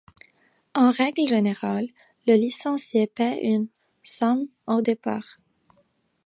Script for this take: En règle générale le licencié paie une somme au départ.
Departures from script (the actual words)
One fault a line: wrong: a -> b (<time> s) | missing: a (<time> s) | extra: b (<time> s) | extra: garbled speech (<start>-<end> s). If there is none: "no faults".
no faults